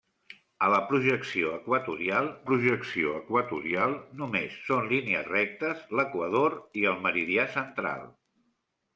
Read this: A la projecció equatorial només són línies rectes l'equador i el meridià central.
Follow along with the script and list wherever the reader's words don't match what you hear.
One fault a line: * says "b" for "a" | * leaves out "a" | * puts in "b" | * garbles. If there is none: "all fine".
* puts in "projecció equatorial"